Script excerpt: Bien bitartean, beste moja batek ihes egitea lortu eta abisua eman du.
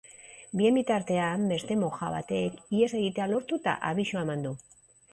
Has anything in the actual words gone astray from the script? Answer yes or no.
no